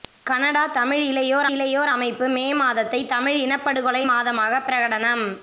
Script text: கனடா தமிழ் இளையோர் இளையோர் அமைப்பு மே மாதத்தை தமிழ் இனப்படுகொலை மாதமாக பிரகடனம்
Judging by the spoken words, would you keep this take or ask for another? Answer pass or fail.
pass